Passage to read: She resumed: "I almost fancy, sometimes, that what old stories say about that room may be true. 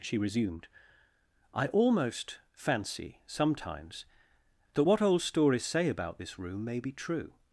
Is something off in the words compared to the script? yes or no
yes